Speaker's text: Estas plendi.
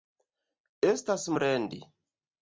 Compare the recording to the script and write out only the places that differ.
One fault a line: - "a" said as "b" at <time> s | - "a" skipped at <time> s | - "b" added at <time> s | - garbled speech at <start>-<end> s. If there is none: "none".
none